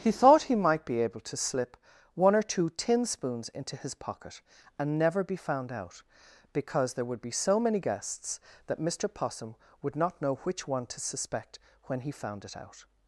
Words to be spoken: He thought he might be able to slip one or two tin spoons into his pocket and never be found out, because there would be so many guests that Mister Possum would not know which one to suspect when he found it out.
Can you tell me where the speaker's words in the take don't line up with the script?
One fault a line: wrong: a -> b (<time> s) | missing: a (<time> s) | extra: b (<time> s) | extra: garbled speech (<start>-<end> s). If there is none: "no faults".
no faults